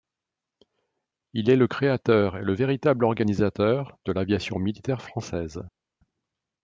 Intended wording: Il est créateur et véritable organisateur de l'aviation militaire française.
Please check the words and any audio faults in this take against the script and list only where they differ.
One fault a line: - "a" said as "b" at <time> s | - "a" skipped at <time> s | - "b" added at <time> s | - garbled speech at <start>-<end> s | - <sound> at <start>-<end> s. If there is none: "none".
- "le" added at 1.6 s
- "le" added at 2.4 s